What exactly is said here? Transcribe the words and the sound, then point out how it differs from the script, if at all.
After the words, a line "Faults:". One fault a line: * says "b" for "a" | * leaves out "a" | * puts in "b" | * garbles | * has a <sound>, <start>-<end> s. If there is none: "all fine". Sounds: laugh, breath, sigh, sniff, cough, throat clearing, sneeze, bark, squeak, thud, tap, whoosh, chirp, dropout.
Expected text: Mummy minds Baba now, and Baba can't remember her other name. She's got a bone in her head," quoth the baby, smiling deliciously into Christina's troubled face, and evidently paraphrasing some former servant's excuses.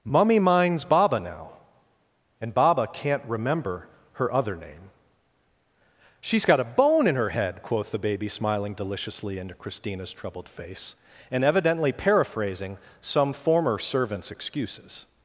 Mummy minds Baba now, and Baba can't remember her other name. She's got a bone in her head," quoth the baby, smiling deliciously into Christina's troubled face, and evidently paraphrasing some former servant's excuses.
Faults:
all fine